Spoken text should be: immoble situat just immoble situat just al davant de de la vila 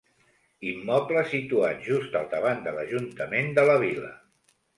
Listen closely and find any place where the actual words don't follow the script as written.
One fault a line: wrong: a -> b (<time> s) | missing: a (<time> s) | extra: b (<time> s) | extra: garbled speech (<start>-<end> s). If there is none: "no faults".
missing: immoble situat just (2.2 s)
extra: l'ajuntament (2.8 s)